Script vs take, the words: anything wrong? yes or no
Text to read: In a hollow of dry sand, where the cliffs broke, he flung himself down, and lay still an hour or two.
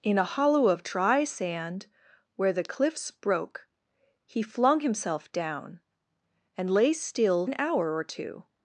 no